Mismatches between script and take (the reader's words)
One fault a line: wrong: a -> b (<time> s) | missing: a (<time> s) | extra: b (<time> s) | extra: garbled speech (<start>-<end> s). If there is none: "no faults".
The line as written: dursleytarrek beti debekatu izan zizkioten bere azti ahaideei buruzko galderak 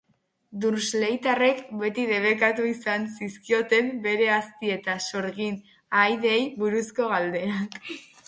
extra: eta sorgin (4.8 s)